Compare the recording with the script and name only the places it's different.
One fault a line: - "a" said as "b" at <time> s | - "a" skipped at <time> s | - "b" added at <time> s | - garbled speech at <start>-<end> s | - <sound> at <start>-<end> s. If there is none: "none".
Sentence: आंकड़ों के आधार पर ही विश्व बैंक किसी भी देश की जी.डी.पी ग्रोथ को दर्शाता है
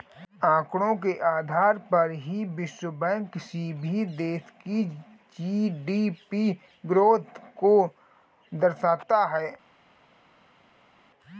none